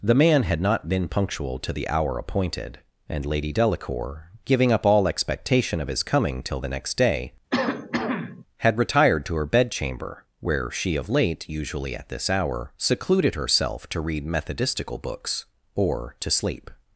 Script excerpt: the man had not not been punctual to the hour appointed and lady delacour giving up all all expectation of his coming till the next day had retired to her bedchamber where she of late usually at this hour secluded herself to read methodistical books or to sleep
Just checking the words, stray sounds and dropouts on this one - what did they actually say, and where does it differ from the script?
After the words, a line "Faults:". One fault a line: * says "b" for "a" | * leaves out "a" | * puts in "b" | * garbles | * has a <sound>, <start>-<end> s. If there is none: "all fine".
the man had not been punctual to the hour appointed and lady delacour giving up all expectation of his coming till the next day had retired to her bedchamber where she of late usually at this hour secluded herself to read methodistical books or to sleep
Faults:
* leaves out "not"
* leaves out "all"
* has a cough, 7.5-8.4 s